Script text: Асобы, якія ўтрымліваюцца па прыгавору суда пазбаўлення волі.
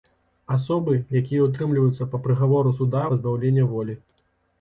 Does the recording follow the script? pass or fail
pass